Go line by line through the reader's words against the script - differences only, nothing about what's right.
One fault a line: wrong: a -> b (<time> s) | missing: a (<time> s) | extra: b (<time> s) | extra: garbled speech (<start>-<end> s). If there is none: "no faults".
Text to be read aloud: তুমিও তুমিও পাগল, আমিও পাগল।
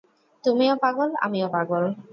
missing: তুমিও (0.7 s)